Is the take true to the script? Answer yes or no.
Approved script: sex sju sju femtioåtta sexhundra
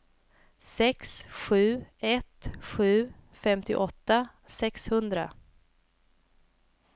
no